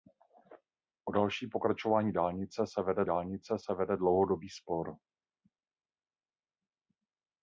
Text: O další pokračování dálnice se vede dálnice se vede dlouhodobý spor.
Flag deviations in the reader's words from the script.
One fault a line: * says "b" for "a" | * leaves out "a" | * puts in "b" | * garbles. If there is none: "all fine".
all fine